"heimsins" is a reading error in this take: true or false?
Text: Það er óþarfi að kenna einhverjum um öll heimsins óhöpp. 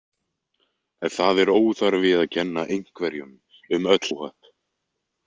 true